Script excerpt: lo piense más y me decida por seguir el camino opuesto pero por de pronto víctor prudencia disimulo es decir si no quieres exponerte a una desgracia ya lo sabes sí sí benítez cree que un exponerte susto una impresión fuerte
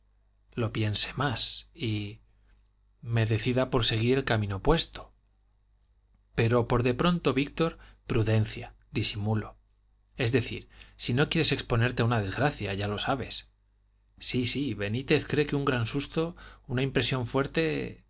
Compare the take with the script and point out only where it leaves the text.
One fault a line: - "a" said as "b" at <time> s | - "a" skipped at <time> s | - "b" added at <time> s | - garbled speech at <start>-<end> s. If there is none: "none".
- "exponerte" said as "gran" at 15.6 s